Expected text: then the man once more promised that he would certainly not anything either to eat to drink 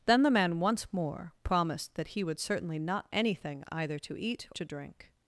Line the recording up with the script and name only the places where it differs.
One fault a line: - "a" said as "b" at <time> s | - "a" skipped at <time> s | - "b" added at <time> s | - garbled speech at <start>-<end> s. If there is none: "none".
none